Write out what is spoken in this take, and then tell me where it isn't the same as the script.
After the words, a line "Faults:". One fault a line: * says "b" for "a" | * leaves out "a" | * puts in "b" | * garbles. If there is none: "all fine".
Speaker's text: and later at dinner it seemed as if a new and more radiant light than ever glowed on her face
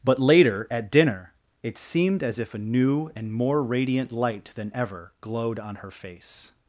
but later at dinner it seemed as if a new and more radiant light than ever glowed on her face
Faults:
* says "but" for "and"